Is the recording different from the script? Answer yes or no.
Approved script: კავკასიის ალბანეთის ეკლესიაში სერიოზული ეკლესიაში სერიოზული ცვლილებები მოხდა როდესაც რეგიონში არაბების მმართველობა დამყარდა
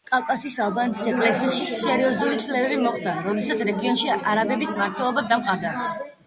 yes